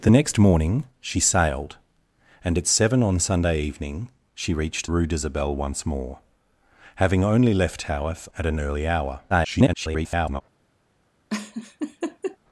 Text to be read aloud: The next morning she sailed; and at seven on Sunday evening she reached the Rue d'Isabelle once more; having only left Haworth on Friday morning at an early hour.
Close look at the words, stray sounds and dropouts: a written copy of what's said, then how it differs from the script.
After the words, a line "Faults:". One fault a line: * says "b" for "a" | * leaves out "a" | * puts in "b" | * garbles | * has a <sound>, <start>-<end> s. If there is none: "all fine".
The next morning she sailed; and at seven on Sunday evening she reached Rue d'Isabelle once more; having only left Haworth at an early hour. [garbled]
Faults:
* leaves out "the"
* leaves out "on Friday morning"
* garbles
* has a laugh, 11.3-12.4 s